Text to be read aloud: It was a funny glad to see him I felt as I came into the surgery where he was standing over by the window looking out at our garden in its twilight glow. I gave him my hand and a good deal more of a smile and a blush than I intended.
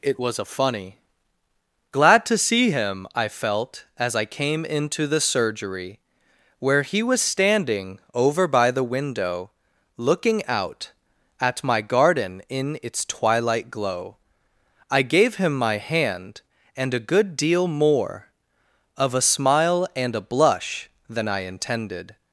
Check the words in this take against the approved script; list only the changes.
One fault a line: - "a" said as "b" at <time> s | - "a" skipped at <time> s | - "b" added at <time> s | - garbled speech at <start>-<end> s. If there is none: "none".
- "our" said as "my" at 11.6 s